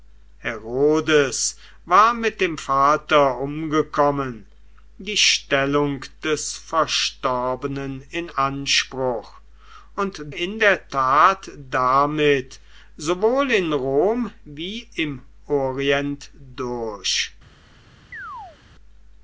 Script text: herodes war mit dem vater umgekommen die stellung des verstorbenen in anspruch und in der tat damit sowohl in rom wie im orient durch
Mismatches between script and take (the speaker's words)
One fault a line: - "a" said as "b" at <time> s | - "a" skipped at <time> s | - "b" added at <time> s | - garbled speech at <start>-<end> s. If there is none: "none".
none